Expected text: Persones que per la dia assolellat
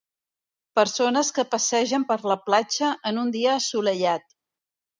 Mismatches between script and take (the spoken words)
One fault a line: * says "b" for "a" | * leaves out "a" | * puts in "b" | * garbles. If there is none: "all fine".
* puts in "passegen"
* puts in "platja en un"